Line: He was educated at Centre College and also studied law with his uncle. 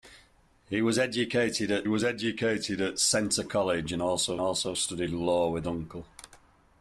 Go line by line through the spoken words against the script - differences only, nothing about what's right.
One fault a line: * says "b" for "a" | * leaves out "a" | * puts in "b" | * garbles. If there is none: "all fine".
* puts in "was educated at"
* puts in "also"
* leaves out "his"